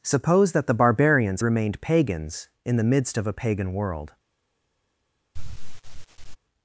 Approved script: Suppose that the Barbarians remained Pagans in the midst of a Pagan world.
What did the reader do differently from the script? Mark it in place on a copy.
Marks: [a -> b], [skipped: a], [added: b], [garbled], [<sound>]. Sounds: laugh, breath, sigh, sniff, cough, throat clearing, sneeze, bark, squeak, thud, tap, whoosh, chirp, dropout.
Suppose that the Barbarians remained Pagans in the midst of a Pagan world. [sigh]